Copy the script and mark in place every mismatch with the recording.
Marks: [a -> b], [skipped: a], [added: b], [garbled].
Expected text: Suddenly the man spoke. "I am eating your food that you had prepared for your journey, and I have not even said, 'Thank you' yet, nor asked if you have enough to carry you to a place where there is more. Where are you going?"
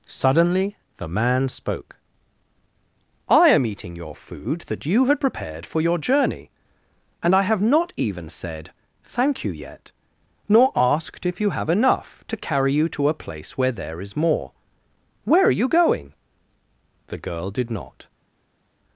Suddenly the man spoke. "I am eating your food that you had prepared for your journey, and I have not even said, 'Thank you' yet, nor asked if you have enough to carry you to a place where there is more. Where are you going?" [added: The girl did not]